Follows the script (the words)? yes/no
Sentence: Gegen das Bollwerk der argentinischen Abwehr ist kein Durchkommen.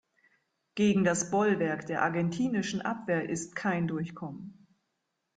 yes